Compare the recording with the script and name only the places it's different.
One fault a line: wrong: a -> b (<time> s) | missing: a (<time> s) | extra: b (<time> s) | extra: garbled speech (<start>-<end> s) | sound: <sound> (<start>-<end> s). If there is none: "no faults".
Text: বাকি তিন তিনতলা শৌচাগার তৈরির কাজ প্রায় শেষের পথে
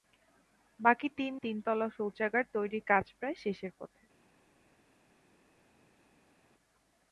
no faults